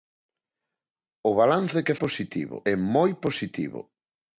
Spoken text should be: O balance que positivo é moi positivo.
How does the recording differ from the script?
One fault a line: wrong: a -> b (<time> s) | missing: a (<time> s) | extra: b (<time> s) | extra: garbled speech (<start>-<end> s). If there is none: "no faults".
no faults